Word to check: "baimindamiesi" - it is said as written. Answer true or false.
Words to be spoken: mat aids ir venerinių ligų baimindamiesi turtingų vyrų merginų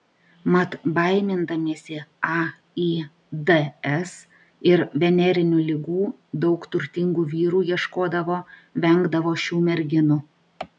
false